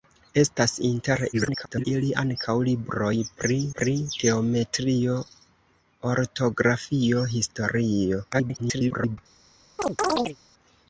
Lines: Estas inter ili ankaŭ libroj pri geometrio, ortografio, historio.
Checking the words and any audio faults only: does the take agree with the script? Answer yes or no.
no